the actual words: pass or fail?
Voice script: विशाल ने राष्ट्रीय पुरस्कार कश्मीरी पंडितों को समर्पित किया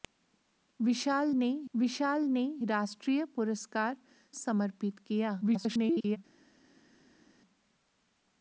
fail